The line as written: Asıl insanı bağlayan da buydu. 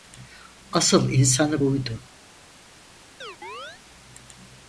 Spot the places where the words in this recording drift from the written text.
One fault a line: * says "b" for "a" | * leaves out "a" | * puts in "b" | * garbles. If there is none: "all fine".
* leaves out "bağlayan da"